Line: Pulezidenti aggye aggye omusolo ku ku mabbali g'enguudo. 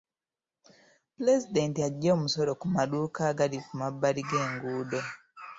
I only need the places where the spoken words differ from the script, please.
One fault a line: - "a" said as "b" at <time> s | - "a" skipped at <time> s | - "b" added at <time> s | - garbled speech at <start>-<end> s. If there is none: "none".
- "aggye" skipped at 2.1 s
- "maduuka agali" added at 2.7 s